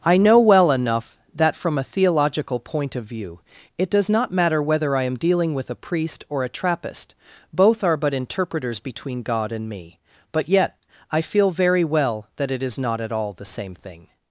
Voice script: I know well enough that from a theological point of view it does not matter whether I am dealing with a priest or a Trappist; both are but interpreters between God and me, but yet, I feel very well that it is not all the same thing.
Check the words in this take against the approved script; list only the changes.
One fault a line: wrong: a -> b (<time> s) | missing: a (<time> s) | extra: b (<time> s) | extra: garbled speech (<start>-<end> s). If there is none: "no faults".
extra: at (13.0 s)